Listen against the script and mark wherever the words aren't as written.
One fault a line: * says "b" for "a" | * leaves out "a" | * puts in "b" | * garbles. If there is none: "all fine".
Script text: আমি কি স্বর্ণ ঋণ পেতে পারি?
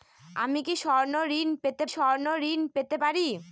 * puts in "স্বর্ণ ঋণ পেতে"